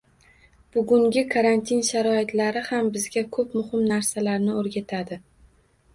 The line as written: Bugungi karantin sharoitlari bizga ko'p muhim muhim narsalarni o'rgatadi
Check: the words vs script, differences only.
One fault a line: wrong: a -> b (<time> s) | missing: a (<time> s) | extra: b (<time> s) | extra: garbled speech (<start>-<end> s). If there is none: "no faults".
extra: ham (2.7 s)
missing: muhim (3.9 s)